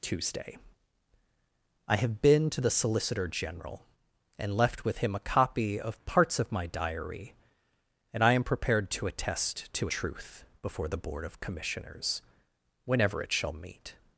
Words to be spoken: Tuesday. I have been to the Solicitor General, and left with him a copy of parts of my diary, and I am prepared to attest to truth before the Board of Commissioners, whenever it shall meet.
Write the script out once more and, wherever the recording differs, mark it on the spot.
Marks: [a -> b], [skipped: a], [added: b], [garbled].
Tuesday. I have been to the Solicitor General, and left with him a copy of parts of my diary, and I am prepared to attest to truth before the Board of Commissioners, whenever it shall meet.